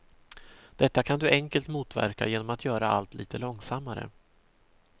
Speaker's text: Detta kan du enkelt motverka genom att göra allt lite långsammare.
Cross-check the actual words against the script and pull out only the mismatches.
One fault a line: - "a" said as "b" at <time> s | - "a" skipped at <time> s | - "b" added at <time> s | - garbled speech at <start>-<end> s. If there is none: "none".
none